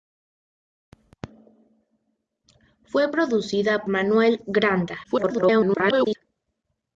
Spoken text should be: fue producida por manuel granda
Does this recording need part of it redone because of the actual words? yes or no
yes